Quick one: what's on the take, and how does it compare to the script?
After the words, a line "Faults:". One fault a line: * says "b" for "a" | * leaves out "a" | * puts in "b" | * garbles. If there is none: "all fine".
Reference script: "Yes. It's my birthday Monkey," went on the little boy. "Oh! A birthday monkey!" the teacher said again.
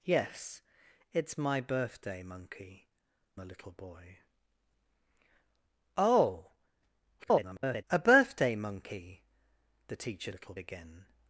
"Yes. It's my birthday Monkey," the little boy. "Oh! [garbled] A birthday monkey!" the teacher little again.
Faults:
* leaves out "went on"
* garbles
* says "little" for "said"